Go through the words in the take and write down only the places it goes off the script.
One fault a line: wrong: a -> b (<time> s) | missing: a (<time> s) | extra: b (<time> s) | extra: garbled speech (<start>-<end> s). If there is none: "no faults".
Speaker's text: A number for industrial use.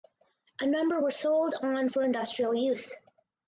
extra: were sold on (1.0 s)